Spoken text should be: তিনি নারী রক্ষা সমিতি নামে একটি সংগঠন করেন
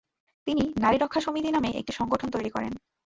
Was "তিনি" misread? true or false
false